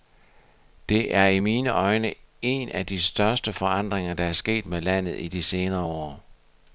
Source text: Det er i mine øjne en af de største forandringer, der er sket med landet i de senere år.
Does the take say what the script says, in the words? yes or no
yes